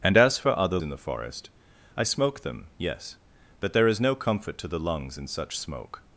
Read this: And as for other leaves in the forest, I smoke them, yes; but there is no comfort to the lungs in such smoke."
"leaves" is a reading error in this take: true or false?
true